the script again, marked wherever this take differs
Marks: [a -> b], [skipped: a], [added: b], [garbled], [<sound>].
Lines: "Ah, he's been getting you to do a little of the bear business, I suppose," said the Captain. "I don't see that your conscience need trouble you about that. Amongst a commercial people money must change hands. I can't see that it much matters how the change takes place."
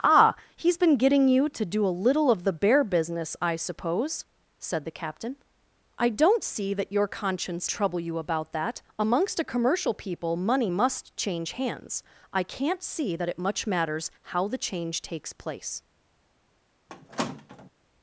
"Ah, he's been getting you to do a little of the bear business, I suppose," said the Captain. "I don't see that your conscience [skipped: need] trouble you about that. Amongst a commercial people money must change hands. I can't see that it much matters how the change takes place." [squeak]